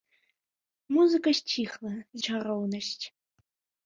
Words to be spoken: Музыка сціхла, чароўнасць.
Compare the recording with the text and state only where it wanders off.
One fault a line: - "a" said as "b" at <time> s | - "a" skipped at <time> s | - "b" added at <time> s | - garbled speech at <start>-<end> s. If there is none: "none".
none